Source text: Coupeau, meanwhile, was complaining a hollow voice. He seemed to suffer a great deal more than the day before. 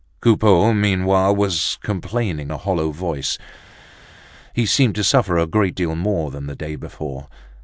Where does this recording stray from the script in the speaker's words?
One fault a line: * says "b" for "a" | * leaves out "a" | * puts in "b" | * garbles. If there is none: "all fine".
all fine